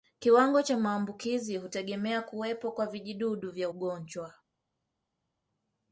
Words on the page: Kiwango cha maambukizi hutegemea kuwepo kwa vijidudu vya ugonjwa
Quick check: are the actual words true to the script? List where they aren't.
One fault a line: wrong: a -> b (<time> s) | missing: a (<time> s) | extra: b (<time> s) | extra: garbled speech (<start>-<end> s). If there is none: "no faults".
no faults